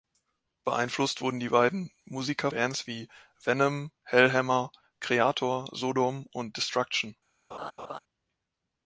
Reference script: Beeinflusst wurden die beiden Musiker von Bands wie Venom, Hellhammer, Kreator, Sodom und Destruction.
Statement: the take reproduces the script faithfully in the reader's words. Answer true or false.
false